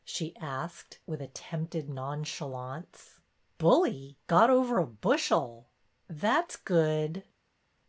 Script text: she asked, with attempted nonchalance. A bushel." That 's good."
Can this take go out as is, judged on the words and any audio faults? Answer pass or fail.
fail